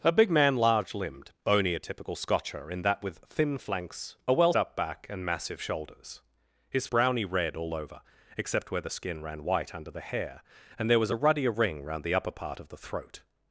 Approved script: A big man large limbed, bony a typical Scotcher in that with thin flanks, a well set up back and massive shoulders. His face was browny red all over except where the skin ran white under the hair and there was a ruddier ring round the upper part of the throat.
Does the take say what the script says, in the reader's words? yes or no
no